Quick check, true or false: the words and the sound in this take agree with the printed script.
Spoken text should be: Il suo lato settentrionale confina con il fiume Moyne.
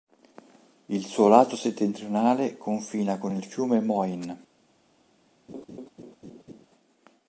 false